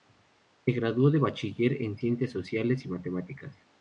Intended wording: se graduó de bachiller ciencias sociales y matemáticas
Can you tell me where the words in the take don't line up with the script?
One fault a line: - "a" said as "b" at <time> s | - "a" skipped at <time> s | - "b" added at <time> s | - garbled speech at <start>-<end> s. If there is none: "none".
- "en" added at 1.8 s